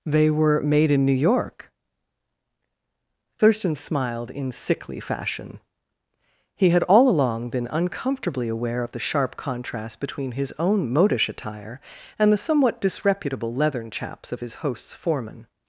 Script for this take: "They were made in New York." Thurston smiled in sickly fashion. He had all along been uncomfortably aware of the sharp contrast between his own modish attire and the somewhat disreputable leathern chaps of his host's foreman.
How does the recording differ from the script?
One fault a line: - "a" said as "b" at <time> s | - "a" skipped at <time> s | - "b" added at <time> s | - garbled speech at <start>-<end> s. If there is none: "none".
none